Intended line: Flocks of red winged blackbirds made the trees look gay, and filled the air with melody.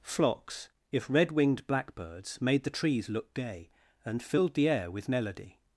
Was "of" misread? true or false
true